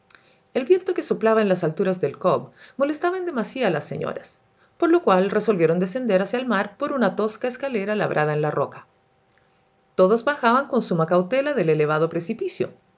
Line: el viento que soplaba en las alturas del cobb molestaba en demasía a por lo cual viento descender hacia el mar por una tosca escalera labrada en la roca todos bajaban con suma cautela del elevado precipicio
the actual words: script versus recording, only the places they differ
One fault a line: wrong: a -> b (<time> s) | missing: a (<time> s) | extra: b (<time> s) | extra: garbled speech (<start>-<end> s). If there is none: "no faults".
extra: las señoras (3.7 s)
wrong: viento -> resolvieron (5.3 s)